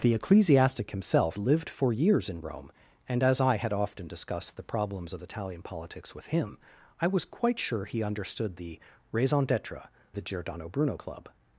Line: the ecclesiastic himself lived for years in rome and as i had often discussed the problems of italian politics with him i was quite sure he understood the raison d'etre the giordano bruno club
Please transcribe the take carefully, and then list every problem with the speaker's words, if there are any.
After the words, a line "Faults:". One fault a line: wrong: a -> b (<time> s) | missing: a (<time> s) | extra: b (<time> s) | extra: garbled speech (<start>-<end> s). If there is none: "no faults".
the ecclesiastic himself lived for years in rome and as i had often discussed the problems of italian politics with him i was quite sure he understood the raison d'etre the giordano bruno club
Faults:
no faults